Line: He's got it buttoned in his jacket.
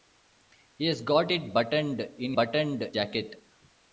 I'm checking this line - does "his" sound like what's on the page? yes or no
no